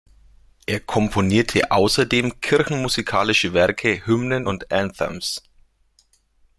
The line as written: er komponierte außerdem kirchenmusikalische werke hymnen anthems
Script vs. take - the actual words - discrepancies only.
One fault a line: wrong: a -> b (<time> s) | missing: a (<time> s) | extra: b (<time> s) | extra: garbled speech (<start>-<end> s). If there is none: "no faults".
extra: und (4.5 s)